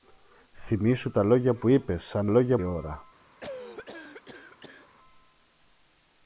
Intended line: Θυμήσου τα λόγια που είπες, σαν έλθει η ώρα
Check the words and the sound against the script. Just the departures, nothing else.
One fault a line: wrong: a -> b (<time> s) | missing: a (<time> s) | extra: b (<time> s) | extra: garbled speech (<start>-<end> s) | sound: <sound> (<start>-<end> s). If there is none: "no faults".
wrong: έλθει -> λόγια (2.3 s)
sound: cough (3.4-4.9 s)